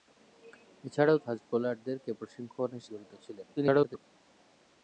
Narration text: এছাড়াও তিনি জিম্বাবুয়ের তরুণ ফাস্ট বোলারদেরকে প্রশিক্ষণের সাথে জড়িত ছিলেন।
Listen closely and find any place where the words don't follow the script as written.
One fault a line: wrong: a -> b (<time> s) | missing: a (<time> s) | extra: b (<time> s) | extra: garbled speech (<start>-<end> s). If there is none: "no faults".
missing: তিনি জিম্বাবুয়ের তরুণ (1.2 s)
missing: সাথে (2.8 s)
extra: garbled speech (3.6-4.0 s)